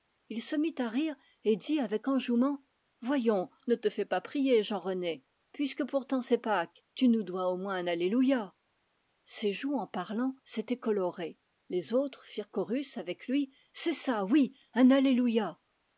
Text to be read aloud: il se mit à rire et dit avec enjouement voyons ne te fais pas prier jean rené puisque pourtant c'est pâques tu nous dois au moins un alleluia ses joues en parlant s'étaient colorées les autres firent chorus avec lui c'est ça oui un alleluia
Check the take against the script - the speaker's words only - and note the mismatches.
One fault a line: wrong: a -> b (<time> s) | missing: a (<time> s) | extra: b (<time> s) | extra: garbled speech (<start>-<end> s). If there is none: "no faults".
no faults